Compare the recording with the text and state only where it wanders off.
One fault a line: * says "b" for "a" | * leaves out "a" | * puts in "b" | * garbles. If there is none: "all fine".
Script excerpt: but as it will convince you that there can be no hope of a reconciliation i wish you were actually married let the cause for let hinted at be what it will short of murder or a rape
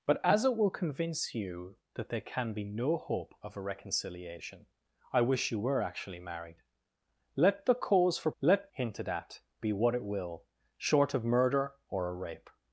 all fine